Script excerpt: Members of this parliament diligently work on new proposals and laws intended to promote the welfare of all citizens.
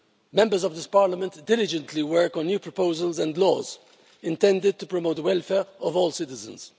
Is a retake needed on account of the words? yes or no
no